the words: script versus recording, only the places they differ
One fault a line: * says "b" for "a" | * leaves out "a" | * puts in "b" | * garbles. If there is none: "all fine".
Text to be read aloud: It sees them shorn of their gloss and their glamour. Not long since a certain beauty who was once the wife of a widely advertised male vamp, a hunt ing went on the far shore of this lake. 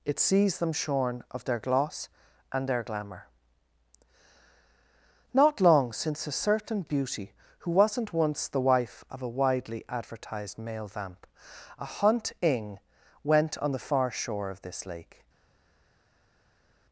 * says "wasn't" for "was"